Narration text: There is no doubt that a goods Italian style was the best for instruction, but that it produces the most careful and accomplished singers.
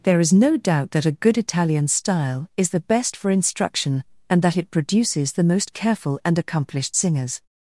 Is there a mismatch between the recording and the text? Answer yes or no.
yes